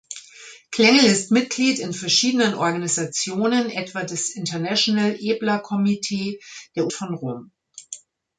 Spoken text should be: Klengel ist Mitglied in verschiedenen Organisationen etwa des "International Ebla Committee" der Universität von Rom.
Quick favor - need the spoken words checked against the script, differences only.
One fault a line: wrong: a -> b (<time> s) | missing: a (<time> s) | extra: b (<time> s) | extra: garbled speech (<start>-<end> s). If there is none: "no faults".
missing: Universität (6.9 s)